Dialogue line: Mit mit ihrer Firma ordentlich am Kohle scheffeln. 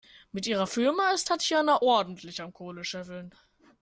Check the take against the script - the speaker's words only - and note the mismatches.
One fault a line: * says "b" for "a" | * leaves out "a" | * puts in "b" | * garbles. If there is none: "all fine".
* leaves out "mit"
* puts in "ist Tatjana"